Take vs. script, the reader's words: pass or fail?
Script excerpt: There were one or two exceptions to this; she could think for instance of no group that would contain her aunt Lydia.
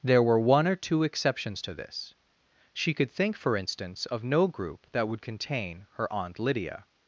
pass